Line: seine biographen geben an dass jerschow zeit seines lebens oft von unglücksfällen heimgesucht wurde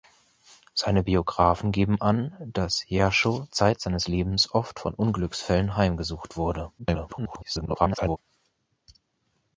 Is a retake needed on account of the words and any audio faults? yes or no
yes